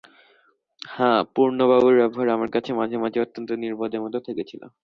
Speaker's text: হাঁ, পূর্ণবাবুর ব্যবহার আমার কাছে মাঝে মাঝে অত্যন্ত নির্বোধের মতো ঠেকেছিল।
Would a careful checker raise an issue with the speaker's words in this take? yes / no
no